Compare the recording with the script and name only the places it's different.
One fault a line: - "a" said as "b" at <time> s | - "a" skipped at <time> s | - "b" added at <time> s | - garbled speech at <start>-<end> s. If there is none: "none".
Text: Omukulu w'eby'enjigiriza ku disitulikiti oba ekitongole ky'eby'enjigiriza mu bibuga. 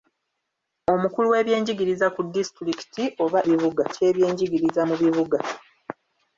- "ekitongole" said as "bibuga" at 3.5 s